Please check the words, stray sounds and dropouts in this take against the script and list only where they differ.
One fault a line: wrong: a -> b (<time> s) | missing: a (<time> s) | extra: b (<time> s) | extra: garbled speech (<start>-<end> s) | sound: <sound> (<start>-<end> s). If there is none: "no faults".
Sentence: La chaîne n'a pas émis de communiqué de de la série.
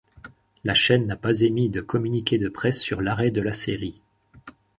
extra: presse sur l'arrêt (2.5 s)